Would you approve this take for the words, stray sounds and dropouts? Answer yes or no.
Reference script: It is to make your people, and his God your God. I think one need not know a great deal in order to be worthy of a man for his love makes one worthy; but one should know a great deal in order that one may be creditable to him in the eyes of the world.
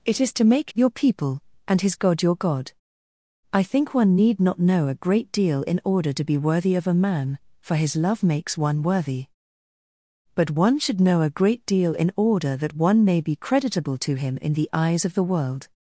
yes